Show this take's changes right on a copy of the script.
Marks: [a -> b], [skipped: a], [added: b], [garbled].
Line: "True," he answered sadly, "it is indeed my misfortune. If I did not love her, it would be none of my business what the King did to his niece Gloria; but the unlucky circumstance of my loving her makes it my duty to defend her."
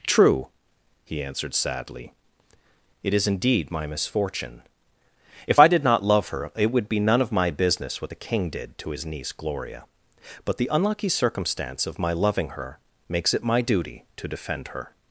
"True," he answered sadly, "it is indeed my misfortune. If I did not love her, it would be none of my business what the King did to his niece Gloria; but the unlucky circumstance of my loving her makes it my duty to defend her."